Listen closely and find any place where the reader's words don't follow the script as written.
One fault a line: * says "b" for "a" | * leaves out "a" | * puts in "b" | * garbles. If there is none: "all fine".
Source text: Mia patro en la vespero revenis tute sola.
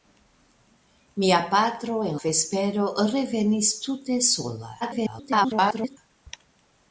* leaves out "la"
* garbles